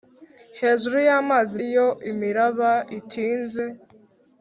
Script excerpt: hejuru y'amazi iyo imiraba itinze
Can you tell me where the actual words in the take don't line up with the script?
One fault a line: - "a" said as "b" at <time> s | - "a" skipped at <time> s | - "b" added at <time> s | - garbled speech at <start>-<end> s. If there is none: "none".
none